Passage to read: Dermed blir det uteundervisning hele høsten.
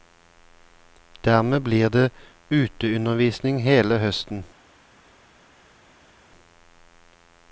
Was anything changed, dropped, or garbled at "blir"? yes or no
no